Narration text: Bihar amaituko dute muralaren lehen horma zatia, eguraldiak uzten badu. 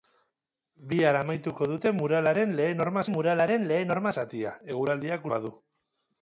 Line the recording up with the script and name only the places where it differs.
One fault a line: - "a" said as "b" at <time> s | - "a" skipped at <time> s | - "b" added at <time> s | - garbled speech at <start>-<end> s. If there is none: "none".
- "muralaren lehen horma" added at 3.1 s
- "uzten" skipped at 5.2 s